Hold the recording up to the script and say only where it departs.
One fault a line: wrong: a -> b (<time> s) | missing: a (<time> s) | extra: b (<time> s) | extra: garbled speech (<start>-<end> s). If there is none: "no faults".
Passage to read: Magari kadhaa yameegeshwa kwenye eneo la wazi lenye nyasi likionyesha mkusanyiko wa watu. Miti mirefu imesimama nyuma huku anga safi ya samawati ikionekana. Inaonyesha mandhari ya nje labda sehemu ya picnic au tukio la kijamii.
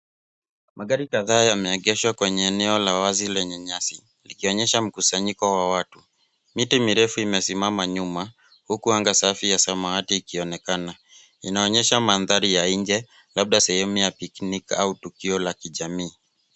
no faults